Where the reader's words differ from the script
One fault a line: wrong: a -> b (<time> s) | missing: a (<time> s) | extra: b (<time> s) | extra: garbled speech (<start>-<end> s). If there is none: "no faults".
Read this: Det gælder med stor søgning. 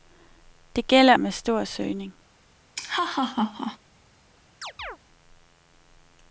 no faults